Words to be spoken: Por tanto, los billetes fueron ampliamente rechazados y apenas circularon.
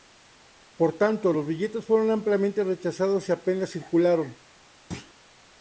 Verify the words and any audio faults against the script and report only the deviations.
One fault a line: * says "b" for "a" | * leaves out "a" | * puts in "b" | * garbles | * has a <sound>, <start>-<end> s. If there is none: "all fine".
* has a thud, 4.9-5.1 s